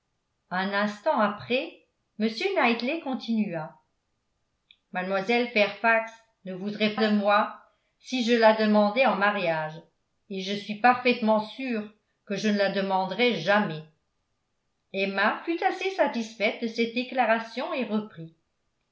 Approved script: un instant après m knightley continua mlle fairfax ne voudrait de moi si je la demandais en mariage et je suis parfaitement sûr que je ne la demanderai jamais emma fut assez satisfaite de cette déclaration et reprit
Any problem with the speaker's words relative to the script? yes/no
no